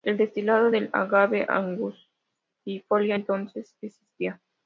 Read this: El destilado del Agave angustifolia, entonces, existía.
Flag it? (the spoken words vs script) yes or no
no